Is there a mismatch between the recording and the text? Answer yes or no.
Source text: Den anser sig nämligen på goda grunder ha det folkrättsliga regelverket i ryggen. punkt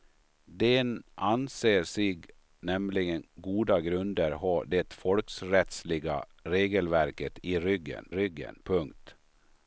yes